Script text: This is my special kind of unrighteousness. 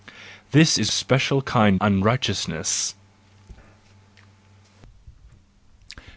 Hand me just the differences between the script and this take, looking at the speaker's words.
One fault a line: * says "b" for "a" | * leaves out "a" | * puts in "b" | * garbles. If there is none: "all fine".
* leaves out "my"
* leaves out "of"